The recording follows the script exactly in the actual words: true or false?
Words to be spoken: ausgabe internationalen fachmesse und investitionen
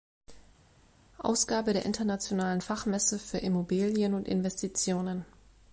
false